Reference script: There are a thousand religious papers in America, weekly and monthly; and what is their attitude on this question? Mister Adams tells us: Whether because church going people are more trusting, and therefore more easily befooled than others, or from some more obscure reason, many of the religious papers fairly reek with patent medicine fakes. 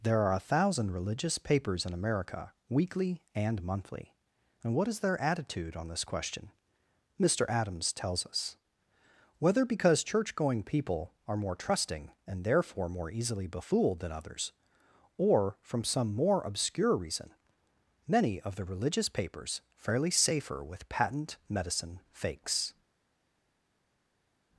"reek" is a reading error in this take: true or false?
true